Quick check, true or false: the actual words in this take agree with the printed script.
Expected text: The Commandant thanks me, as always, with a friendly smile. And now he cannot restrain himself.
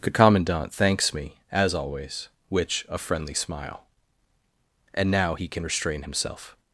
false